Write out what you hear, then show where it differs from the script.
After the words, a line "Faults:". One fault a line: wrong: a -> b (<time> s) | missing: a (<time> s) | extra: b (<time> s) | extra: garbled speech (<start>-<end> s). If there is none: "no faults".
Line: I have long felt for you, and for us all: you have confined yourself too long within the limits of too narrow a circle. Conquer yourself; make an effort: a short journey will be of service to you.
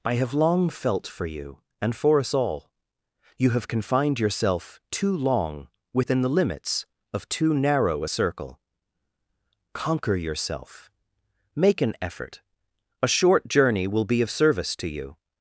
I have long felt for you, and for us all: you have confined yourself too long within the limits of too narrow a circle. Conquer yourself; make an effort: a short journey will be of service to you.
Faults:
no faults